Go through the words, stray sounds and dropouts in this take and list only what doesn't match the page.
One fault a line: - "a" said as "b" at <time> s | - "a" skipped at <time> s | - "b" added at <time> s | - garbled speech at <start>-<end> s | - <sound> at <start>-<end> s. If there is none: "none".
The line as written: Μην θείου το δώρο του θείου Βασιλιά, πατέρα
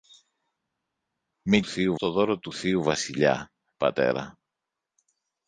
none